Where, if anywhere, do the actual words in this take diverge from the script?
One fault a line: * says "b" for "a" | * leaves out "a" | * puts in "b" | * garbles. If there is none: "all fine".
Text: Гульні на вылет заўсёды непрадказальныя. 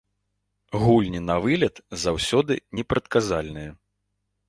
all fine